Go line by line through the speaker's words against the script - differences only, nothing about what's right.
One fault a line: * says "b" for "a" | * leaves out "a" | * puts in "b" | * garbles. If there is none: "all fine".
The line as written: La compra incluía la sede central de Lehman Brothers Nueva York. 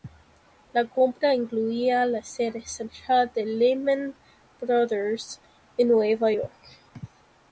* puts in "en"